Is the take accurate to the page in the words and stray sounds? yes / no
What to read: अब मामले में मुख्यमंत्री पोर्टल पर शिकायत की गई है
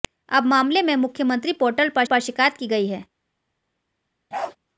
no